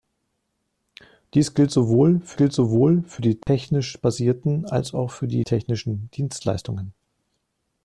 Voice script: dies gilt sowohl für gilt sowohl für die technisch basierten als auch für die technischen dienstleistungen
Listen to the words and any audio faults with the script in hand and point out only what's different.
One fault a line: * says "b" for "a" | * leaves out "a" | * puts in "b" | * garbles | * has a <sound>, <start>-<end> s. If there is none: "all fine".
* has a dropout, 3.4-3.5 s